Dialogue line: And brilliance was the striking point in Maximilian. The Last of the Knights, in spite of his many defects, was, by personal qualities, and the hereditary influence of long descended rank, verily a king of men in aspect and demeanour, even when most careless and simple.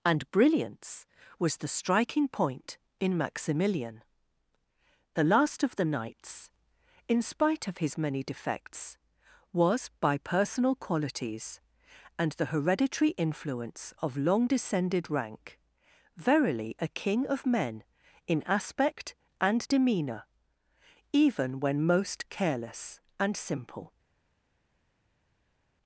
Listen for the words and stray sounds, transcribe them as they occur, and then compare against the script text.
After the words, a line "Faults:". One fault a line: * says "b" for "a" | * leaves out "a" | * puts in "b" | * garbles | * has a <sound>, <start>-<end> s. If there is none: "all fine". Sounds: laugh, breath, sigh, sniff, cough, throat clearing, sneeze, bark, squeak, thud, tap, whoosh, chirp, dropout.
And brilliance was the striking point in Maximilian. The Last of the Knights, in spite of his many defects, was, by personal qualities, and the hereditary influence of long descended rank, verily a king of men in aspect and demeanour, even when most careless and simple.
Faults:
all fine